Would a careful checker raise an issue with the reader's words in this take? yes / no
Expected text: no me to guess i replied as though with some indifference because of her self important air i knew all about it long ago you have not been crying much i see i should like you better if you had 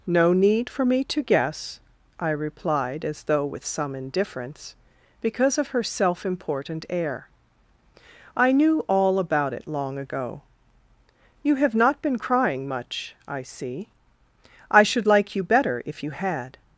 yes